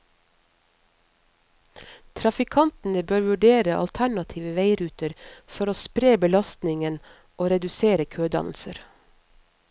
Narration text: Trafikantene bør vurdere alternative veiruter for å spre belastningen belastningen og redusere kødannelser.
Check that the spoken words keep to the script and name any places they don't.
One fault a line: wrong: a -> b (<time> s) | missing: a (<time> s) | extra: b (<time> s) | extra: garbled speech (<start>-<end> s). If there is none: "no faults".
missing: belastningen (7.0 s)